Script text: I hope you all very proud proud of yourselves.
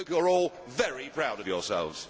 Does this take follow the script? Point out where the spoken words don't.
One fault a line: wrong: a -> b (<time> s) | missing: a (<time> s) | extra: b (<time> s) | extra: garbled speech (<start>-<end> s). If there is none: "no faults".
extra: are (0.2 s)
missing: proud (1.4 s)